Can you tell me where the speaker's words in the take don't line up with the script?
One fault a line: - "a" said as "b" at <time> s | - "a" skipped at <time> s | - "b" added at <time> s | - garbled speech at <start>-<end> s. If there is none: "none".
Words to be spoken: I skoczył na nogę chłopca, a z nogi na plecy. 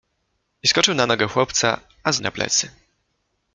- "nogi" skipped at 2.2 s